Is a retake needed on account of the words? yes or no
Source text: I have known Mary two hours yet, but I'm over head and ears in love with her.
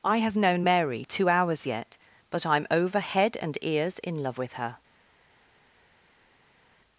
no